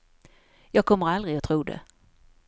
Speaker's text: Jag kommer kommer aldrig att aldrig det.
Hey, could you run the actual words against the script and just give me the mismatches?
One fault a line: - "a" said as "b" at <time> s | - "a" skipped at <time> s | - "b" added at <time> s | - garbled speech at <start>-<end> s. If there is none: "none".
- "kommer" skipped at 1.1 s
- "aldrig" said as "tro" at 1.4 s